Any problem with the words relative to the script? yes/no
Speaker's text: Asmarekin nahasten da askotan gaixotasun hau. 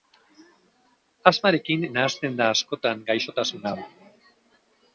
no